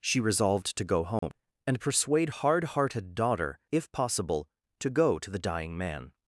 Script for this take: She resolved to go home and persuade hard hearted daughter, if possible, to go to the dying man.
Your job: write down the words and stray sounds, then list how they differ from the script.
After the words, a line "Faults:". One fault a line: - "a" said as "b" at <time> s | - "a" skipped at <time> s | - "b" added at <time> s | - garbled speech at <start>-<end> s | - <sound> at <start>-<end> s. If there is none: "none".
She resolved to go home and persuade hard hearted daughter, if possible, to go to the dying man.
Faults:
- dropout at 1.2-1.2 s